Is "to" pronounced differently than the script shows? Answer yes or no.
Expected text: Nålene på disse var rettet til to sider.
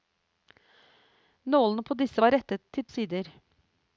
yes